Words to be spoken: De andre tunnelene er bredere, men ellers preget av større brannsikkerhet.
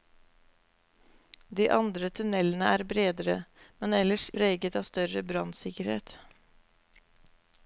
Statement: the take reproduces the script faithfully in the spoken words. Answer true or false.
true